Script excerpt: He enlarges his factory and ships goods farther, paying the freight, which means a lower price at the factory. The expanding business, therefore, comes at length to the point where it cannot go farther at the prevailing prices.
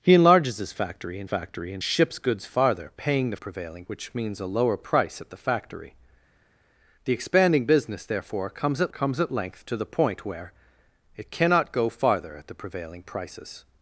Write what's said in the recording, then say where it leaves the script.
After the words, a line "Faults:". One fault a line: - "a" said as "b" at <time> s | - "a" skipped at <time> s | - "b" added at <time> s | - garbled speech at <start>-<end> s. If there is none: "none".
He enlarges his factory and factory and ships goods farther, paying the prevailing, which means a lower price at the factory. The expanding business, therefore, comes at comes at length to the point where it cannot go farther at the prevailing prices.
Faults:
- "factory and" added at 1.2 s
- "freight" said as "prevailing" at 3.4 s
- "comes at" added at 8.9 s